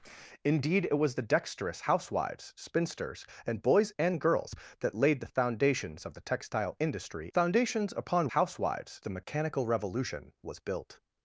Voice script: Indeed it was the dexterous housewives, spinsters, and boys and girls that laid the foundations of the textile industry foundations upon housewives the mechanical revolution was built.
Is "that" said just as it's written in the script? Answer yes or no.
yes